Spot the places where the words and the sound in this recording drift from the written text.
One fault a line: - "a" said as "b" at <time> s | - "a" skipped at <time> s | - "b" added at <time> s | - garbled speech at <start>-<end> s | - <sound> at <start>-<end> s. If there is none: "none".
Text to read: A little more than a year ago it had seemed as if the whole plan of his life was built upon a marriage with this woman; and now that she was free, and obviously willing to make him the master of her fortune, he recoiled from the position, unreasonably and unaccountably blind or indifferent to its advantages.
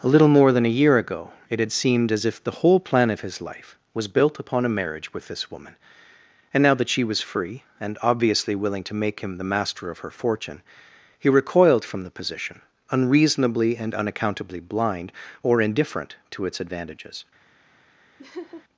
- laugh at 18.2-18.6 s